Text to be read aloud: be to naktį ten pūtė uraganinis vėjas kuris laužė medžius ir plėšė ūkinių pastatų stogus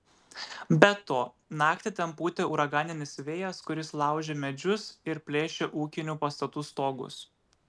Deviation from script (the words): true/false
false